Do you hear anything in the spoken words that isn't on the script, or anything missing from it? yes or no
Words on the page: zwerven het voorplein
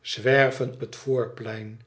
no